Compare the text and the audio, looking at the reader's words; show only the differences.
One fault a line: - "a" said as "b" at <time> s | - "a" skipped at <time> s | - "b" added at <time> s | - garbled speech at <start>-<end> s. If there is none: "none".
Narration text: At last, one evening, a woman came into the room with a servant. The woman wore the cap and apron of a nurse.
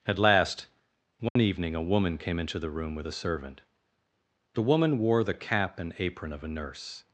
none